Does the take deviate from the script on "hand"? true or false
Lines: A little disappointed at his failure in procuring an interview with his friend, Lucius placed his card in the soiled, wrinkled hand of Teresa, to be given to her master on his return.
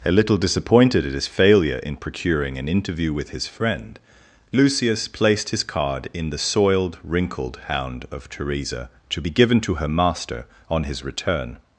true